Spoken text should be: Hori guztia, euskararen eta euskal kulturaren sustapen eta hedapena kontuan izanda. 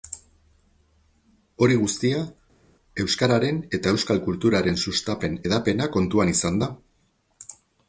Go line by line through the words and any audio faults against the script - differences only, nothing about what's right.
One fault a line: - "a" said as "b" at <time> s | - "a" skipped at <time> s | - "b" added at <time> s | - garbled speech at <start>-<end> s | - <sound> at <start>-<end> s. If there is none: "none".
- "eta" skipped at 5.4 s